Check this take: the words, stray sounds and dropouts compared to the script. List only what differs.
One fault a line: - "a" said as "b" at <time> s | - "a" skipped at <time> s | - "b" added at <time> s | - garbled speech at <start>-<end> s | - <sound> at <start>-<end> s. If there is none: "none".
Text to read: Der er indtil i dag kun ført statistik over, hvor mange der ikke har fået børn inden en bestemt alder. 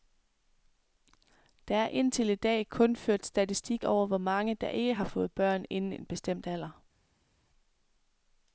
none